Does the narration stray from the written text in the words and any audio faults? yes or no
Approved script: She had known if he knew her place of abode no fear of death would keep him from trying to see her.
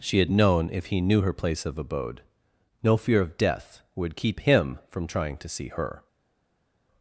no